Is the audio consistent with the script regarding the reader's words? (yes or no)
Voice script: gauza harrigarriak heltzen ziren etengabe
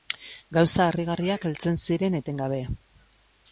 yes